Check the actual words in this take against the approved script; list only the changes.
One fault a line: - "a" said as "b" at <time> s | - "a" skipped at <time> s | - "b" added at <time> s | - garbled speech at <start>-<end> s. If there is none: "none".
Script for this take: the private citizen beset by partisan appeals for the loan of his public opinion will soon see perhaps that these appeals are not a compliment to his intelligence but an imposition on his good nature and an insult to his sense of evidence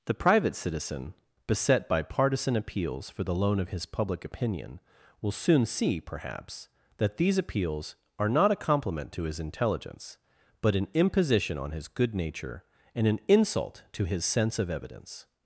none